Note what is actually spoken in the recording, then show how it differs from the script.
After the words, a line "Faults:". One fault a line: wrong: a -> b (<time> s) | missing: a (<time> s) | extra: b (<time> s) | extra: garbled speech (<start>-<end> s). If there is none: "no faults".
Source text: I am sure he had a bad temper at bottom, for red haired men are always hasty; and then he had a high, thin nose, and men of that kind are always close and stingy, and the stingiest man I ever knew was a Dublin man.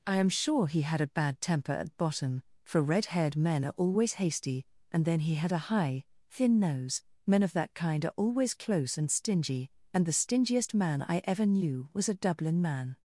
I am sure he had a bad temper at bottom, for red haired men are always hasty; and then he had a high, thin nose, men of that kind are always close and stingy, and the stingiest man I ever knew was a Dublin man.
Faults:
missing: and (7.0 s)